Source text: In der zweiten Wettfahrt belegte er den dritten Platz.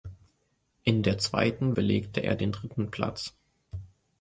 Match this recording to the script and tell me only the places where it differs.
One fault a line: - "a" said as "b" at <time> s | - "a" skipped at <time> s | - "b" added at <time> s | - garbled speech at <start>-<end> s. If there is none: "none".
- "Wettfahrt" skipped at 1.8 s